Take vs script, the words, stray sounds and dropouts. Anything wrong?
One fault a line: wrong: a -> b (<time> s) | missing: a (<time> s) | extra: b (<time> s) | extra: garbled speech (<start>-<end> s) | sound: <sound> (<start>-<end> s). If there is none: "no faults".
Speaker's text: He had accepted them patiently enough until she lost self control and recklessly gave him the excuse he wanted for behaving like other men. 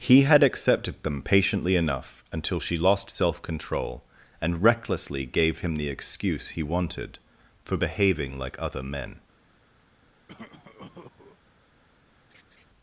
sound: cough (10.3-11.4 s)
sound: laugh (12.3-12.7 s)